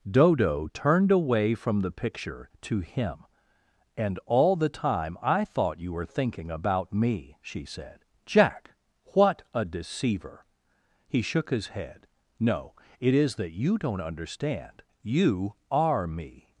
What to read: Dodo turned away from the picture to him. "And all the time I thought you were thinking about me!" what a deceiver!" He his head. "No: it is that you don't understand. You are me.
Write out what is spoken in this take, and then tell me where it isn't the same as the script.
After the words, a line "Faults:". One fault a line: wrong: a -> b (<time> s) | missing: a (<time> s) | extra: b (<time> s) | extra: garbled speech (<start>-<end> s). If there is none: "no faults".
Dodo turned away from the picture to him. "And all the time I thought you were thinking about me!" she said. "Jack, what a deceiver!" He shook his head. "No: it is that you don't understand. You are me.
Faults:
extra: she said Jack (7.4 s)
extra: shook (11.2 s)